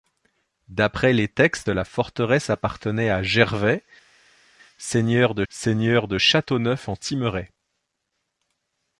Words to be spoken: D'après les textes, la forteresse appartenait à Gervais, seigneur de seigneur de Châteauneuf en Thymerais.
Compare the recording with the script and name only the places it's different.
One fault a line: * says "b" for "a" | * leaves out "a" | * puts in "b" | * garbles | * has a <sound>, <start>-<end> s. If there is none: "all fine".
all fine